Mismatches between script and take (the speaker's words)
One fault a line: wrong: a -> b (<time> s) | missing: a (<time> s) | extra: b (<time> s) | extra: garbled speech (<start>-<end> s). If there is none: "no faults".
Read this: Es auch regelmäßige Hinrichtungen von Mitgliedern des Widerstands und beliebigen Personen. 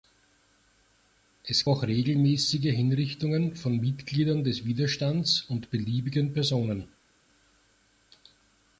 no faults